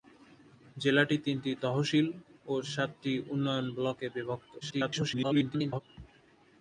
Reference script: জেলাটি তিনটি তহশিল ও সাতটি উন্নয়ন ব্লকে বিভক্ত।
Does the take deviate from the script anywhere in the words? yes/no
yes